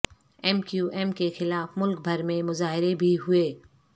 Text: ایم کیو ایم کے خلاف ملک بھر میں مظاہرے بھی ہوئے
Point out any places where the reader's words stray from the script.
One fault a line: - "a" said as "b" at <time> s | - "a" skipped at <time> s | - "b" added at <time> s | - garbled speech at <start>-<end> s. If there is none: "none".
none